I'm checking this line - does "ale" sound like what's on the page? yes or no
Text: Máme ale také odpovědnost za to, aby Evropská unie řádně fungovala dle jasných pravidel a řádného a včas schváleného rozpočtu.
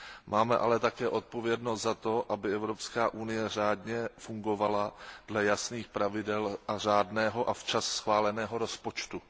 yes